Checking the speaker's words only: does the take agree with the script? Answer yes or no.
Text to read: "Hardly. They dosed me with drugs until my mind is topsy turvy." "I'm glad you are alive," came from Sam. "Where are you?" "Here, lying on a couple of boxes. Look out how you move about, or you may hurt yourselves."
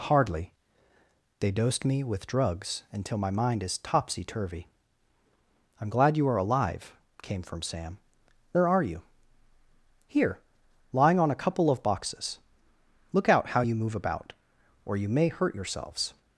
yes